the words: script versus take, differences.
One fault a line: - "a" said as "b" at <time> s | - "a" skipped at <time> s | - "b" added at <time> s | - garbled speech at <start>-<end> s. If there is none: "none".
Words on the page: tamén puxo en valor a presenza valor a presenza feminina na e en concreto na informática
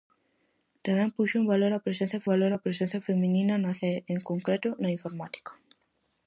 none